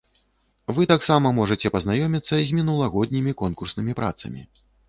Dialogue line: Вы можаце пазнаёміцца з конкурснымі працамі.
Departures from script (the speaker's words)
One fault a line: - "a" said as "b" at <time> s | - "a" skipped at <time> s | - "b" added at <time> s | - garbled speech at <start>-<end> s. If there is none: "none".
- "таксама" added at 0.9 s
- "мінулагоднімі" added at 2.6 s